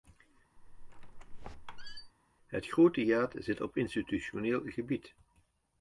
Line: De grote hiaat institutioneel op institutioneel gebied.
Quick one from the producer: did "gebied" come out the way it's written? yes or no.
yes